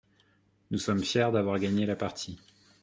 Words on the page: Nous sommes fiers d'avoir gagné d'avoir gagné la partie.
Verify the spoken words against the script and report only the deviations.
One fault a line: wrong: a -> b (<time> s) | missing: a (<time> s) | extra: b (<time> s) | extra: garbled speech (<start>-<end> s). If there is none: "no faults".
missing: d'avoir gagné (1.9 s)